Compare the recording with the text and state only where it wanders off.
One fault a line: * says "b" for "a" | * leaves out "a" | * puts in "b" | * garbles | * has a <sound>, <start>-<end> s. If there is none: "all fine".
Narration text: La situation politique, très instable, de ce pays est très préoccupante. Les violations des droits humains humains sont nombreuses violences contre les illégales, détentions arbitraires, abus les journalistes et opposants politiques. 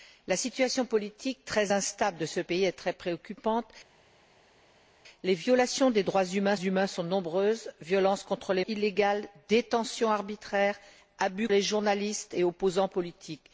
all fine